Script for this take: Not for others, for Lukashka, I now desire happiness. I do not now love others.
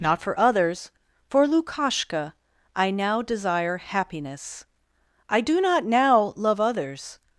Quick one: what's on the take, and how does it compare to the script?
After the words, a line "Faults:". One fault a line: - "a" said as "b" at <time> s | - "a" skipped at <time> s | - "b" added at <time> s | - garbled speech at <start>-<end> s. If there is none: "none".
Not for others, for Lukashka, I now desire happiness. I do not now love others.
Faults:
none